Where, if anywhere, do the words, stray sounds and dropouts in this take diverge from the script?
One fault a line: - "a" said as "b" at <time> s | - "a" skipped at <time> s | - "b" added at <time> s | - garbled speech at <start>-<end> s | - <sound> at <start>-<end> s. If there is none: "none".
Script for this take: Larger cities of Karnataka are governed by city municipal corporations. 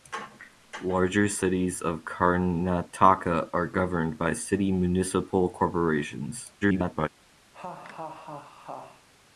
- garbled speech at 6.6-7.1 s
- laugh at 7.5-9.1 s